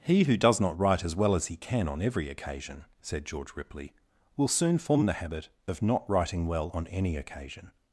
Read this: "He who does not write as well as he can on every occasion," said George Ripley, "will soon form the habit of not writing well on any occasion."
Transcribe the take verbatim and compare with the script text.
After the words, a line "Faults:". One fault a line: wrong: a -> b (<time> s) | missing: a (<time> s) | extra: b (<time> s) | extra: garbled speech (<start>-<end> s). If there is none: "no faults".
"He who does not write as well as he can on every occasion," said George Ripley, "will soon form the habit of not writing well on any occasion."
Faults:
no faults